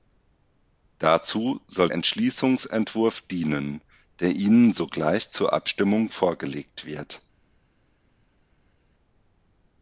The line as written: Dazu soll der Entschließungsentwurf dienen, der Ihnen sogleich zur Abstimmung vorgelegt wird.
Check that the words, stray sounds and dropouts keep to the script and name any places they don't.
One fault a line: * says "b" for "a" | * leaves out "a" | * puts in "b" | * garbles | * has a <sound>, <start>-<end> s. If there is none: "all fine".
* leaves out "der"